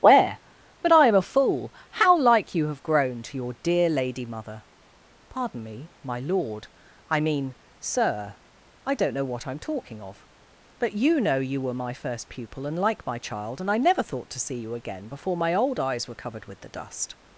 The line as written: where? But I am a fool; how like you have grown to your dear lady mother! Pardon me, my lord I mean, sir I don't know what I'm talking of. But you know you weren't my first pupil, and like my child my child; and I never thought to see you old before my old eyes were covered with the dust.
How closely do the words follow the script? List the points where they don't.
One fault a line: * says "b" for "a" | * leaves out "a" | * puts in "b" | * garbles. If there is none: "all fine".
* says "were" for "weren't"
* leaves out "my child"
* says "again" for "old"